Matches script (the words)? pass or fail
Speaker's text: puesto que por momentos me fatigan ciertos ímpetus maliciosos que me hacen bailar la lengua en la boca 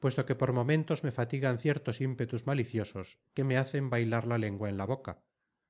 pass